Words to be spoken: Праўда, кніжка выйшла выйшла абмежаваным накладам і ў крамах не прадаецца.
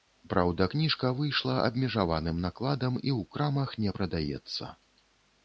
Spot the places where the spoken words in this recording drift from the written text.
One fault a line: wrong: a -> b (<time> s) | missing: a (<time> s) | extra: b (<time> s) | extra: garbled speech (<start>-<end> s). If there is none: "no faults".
missing: выйшла (1.6 s)